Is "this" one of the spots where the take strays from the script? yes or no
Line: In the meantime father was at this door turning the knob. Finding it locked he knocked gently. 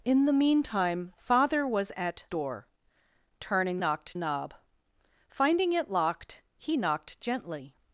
yes